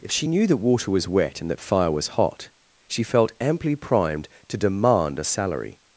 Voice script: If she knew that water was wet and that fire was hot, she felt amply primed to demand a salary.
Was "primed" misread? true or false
false